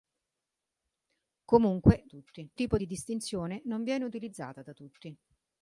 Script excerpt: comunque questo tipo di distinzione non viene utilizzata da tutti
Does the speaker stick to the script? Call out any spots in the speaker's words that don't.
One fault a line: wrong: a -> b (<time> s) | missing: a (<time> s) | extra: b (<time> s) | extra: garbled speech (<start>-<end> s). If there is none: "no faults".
wrong: questo -> tutti (2.1 s)